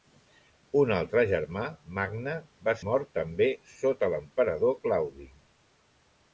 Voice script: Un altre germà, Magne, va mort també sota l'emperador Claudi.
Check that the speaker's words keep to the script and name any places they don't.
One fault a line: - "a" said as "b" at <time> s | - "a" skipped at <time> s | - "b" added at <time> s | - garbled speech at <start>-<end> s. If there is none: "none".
none